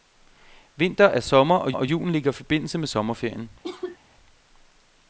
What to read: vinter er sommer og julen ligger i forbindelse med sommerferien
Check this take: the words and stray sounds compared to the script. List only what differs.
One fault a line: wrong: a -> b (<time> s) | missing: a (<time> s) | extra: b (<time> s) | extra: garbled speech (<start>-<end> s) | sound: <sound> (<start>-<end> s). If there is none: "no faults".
extra: og (1.7 s)
sound: cough (3.6-4.0 s)